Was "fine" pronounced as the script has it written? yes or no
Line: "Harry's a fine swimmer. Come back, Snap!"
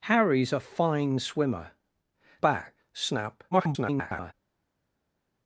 yes